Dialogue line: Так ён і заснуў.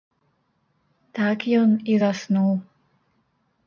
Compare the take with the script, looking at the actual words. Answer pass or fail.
pass